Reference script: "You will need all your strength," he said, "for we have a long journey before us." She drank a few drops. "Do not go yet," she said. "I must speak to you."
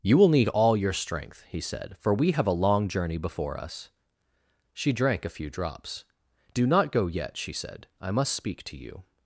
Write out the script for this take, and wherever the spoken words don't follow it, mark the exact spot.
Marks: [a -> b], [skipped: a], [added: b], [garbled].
"You will need all your strength," he said, "for we have a long journey before us." She drank a few drops. "Do not go yet," she said. "I must speak to you."